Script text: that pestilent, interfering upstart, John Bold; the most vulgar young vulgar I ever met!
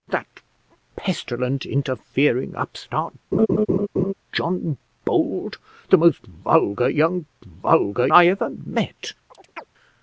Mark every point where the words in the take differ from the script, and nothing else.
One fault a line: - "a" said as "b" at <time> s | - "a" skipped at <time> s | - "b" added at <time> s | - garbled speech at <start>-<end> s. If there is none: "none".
none